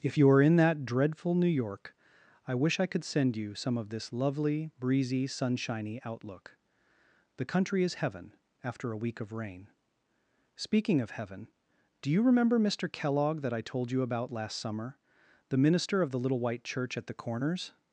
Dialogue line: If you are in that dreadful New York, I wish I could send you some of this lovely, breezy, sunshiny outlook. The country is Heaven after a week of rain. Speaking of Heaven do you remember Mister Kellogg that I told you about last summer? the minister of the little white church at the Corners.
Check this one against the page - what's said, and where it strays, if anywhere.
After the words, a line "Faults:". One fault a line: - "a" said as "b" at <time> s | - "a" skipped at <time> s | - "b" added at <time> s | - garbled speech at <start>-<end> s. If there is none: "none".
If you are in that dreadful New York, I wish I could send you some of this lovely, breezy, sunshiny outlook. The country is Heaven after a week of rain. Speaking of Heaven do you remember Mister Kellogg that I told you about last summer? the minister of the little white church at the Corners.
Faults:
none